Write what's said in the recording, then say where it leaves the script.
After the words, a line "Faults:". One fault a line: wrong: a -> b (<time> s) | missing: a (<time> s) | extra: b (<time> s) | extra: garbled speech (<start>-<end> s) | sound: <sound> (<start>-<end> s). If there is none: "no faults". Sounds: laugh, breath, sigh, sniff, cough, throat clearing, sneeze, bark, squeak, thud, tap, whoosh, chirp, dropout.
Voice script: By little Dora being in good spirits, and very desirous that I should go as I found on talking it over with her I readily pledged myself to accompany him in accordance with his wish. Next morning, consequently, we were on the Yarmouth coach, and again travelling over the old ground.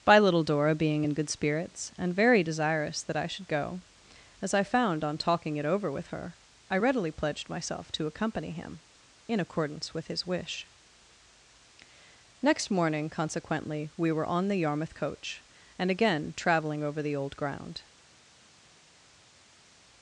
By little Dora being in good spirits, and very desirous that I should go as I found on talking it over with her I readily pledged myself to accompany him in accordance with his wish. Next morning, consequently, we were on the Yarmouth coach, and again travelling over the old ground.
Faults:
no faults